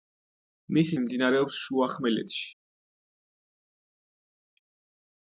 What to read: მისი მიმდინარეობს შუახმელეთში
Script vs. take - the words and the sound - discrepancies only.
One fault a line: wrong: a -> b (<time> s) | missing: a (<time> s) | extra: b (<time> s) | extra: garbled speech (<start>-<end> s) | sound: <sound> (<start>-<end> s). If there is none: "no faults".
no faults